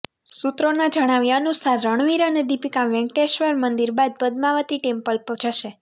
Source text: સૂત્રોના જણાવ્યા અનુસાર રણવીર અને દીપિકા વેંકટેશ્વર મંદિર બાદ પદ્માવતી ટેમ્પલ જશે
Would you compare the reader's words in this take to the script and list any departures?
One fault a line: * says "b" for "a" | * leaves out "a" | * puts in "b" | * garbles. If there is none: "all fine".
all fine